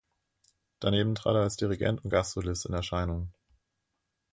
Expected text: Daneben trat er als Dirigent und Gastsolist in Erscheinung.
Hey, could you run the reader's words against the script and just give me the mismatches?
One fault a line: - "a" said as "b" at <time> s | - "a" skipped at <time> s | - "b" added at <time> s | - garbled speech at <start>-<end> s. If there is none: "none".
none